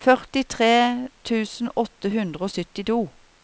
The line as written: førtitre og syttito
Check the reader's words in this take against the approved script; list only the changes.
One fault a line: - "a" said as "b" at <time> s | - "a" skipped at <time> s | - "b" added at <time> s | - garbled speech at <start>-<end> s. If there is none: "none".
- "tusen åtte hundre" added at 1.3 s